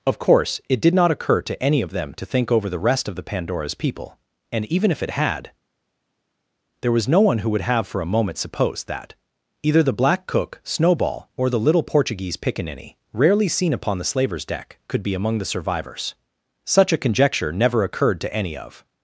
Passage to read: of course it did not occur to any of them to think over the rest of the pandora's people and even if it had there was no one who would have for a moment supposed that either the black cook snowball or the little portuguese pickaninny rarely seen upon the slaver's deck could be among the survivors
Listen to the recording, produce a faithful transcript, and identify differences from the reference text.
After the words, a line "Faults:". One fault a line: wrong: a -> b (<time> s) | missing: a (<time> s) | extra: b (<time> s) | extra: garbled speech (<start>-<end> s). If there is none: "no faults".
of course it did not occur to any of them to think over the rest of the pandora's people and even if it had there was no one who would have for a moment supposed that either the black cook snowball or the little portuguese pickaninny rarely seen upon the slaver's deck could be among the survivors such a conjecture never occurred to any of
Faults:
extra: such a conjecture never occurred to any of (16.6 s)